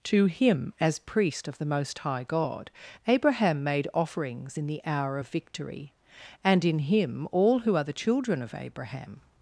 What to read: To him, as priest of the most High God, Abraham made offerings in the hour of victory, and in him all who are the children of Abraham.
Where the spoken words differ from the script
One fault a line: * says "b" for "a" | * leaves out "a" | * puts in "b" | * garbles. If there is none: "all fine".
all fine